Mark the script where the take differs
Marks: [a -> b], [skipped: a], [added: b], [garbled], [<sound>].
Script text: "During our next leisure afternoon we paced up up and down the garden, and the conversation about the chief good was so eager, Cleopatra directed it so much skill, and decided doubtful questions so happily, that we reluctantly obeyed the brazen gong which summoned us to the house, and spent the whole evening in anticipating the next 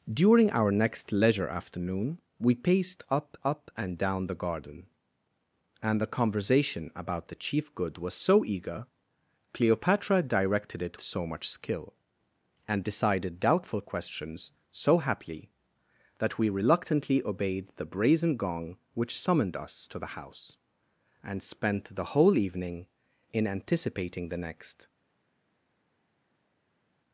"During our next leisure afternoon we paced up up and down the garden, and the conversation about the chief good was so eager, Cleopatra directed it so much skill, and decided doubtful questions so happily, that we reluctantly obeyed the brazen gong which summoned us to the house, and spent the whole evening in anticipating the next